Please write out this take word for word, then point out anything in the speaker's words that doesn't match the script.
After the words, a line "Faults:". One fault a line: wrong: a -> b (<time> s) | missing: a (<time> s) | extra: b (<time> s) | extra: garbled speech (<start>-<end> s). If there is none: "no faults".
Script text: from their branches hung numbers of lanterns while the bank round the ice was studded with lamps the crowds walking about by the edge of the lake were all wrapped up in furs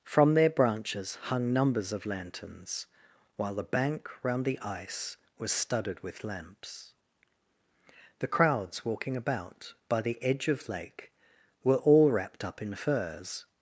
from their branches hung numbers of lanterns while the bank round the ice was studded with lamps the crowds walking about by the edge of lake were all wrapped up in furs
Faults:
missing: the (10.7 s)